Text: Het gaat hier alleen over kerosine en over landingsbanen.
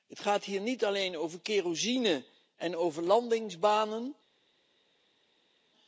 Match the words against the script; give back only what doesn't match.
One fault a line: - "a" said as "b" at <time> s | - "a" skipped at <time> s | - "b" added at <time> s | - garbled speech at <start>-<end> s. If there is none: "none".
- "niet" added at 0.6 s